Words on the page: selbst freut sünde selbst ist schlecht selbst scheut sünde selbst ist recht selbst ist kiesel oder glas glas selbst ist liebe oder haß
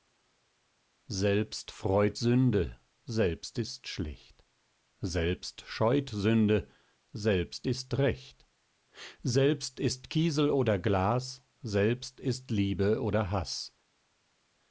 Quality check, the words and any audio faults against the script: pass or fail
fail